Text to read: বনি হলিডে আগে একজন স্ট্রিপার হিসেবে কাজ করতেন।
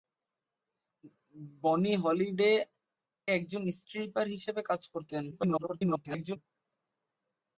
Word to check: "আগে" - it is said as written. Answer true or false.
false